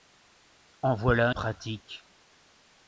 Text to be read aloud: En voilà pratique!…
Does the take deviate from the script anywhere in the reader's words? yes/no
no